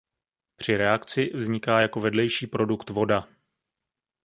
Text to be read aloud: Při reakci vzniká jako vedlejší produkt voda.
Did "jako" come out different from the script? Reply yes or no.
no